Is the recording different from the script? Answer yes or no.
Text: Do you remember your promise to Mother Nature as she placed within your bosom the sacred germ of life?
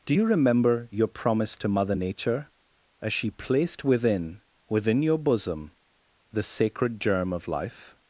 yes